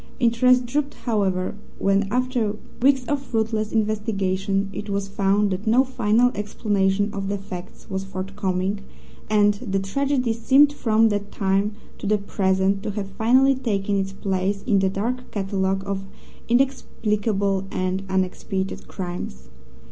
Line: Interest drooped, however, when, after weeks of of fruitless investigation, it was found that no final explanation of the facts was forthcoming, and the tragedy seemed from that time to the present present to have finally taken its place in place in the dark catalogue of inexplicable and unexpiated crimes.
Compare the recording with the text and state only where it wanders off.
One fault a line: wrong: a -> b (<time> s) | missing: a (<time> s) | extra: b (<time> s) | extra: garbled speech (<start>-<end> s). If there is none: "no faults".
missing: of (3.2 s)
missing: present (12.8 s)
missing: place in (14.8 s)